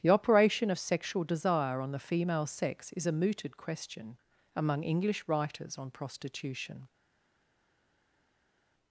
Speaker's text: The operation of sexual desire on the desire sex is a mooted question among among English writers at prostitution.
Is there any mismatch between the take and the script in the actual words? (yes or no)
yes